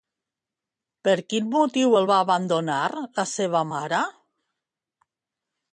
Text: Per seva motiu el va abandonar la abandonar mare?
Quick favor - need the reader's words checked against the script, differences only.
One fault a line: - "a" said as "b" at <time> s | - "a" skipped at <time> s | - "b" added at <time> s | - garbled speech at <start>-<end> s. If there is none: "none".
- "seva" said as "quin" at 1.3 s
- "abandonar" said as "seva" at 3.3 s